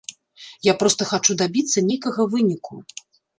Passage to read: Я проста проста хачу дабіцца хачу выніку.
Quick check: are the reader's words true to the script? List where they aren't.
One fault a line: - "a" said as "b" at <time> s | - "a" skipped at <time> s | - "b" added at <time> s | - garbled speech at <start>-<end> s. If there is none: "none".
- "проста" skipped at 1.1 s
- "хачу" said as "нейкага" at 1.9 s